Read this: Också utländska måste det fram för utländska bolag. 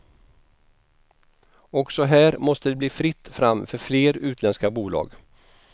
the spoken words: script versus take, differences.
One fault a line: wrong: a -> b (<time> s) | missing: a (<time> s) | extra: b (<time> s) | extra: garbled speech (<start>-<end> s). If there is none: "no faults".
wrong: utländska -> här (2.0 s)
extra: bli fritt (2.8 s)
extra: fler (3.8 s)